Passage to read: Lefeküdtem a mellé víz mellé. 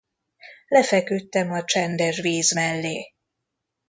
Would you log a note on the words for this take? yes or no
yes